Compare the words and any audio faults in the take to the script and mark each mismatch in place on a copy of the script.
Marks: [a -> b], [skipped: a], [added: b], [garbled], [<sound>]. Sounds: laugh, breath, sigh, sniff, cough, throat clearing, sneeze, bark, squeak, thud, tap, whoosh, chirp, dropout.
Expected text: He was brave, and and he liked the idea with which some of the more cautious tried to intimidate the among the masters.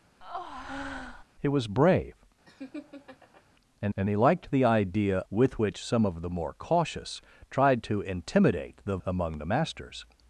[breath] He was brave, [laugh] and and he liked the idea with which some of the more cautious tried to intimidate the among the masters.